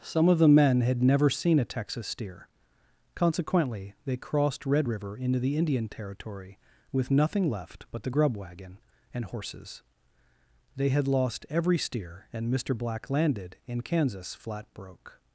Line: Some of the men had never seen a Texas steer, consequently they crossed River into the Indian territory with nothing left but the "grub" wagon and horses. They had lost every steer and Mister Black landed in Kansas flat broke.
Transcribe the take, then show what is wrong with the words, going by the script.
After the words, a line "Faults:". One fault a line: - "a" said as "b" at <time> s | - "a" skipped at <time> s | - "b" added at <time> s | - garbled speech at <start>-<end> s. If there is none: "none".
Some of the men had never seen a Texas steer, consequently they crossed Red river into the Indian territory with nothing left but the "grub" wagon and horses. They had lost every steer and Mister Black landed in Kansas flat broke.
Faults:
- "Red" added at 4.7 s